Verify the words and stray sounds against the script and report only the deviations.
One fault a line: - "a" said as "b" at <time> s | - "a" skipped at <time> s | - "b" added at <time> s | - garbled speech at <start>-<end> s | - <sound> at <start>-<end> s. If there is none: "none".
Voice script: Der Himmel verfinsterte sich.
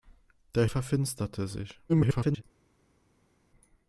- "Himmel" skipped at 0.7 s
- garbled speech at 1.9-2.4 s